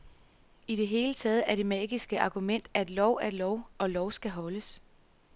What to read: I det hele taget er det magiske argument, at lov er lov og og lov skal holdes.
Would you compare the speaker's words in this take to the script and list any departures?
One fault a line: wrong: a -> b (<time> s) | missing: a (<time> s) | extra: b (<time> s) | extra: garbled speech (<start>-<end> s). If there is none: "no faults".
missing: og (3.9 s)